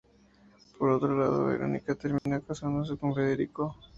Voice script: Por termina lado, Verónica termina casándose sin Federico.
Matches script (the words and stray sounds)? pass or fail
fail